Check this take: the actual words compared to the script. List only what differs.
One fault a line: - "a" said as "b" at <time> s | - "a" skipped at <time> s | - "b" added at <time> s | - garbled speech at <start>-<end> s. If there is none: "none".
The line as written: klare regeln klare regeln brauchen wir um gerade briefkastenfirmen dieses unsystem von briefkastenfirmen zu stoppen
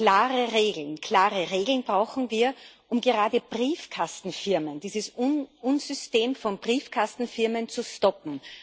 none